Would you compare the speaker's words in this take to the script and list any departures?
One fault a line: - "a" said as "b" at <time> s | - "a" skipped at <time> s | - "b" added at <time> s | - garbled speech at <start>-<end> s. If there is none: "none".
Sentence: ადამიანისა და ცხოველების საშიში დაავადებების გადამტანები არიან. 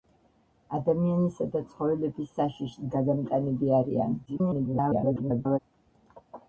- "დაავადებების" skipped at 2.9 s
- garbled speech at 4.3-5.6 s